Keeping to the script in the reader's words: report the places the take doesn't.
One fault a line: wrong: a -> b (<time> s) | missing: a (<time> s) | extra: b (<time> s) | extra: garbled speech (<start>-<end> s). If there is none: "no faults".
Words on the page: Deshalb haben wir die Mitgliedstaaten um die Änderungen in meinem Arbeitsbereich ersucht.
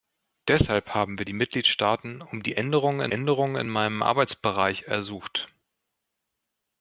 extra: Änderungen in (3.1 s)